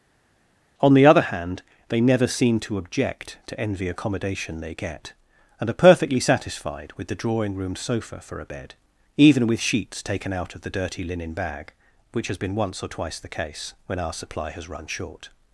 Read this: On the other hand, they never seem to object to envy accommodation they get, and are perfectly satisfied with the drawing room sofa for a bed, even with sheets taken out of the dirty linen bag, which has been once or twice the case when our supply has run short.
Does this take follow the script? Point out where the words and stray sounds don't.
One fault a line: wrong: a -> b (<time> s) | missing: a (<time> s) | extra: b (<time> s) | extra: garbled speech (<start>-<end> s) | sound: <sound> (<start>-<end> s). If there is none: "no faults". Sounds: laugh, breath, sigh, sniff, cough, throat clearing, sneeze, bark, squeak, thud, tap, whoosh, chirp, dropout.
no faults